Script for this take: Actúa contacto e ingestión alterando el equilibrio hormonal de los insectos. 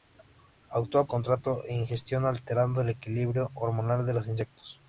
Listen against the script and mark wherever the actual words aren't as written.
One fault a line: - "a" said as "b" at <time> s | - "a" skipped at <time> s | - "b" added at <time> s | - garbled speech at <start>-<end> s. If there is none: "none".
none